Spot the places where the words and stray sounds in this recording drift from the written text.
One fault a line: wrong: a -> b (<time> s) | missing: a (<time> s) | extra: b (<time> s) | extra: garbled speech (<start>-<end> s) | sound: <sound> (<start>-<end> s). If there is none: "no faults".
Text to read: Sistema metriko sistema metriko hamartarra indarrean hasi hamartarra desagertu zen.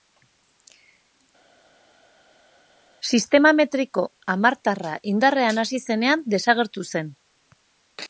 missing: sistema metriko (4.0 s)
wrong: hamartarra -> zenean (5.9 s)